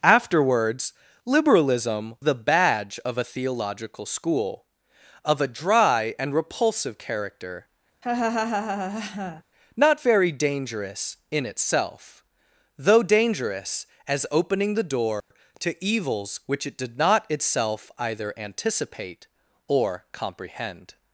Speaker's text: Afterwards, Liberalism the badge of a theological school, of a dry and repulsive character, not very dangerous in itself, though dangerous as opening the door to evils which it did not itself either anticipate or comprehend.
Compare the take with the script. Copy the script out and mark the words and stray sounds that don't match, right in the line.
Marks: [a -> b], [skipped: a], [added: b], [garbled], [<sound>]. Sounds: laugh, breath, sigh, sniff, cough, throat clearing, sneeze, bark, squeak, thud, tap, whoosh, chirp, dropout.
Afterwards, Liberalism the badge of a theological school, of a dry and repulsive character, [laugh] not very dangerous in itself, though dangerous as opening the door [dropout] to evils which it did not itself either anticipate or comprehend.